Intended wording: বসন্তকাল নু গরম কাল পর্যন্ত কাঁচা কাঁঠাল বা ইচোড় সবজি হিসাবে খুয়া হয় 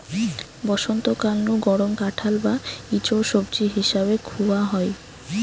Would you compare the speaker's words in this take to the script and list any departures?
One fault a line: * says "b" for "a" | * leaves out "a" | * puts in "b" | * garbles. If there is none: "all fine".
* leaves out "কাল পর্যন্ত কাঁচা"